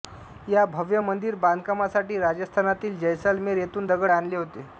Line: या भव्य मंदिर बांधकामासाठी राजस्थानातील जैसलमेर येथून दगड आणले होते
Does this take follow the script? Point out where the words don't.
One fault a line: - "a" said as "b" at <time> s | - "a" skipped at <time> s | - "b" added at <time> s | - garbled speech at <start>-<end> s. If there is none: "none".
none